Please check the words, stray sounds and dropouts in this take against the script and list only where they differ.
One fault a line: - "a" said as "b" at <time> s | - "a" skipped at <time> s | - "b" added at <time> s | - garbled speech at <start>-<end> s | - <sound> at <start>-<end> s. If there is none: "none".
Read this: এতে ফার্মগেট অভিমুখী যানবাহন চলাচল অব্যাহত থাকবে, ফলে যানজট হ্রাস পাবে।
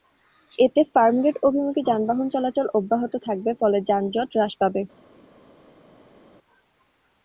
none